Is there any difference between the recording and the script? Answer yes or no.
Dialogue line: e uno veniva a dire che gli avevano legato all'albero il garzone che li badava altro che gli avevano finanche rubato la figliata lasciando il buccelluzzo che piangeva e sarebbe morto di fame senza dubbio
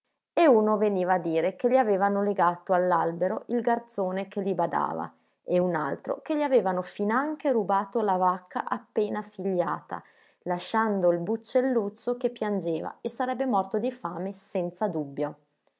yes